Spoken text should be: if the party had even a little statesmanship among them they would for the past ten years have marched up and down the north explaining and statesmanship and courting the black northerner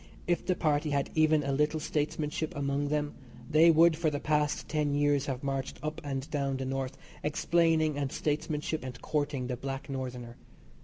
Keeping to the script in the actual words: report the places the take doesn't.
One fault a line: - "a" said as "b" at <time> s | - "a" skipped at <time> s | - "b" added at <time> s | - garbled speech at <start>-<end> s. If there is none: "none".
none